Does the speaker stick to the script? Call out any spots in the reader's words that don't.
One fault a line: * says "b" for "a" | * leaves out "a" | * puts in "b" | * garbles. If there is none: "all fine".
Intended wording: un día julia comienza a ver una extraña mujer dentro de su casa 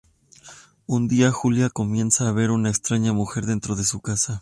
all fine